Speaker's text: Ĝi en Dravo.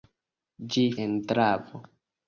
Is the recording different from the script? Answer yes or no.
no